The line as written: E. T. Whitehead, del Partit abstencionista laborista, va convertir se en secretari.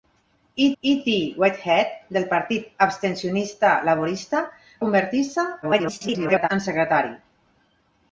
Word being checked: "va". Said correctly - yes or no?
no